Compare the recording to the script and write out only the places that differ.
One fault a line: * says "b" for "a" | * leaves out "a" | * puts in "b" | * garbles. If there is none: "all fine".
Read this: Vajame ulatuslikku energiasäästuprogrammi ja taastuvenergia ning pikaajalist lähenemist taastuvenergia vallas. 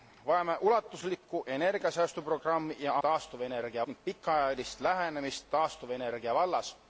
all fine